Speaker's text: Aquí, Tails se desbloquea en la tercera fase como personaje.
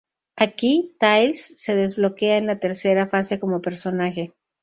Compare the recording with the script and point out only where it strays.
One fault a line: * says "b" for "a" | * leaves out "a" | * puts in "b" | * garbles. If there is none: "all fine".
all fine